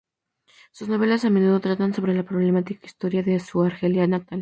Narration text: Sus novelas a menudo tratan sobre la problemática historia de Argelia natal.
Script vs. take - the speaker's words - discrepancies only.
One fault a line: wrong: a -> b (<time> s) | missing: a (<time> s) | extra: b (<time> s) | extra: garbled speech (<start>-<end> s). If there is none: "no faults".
extra: su (3.4 s)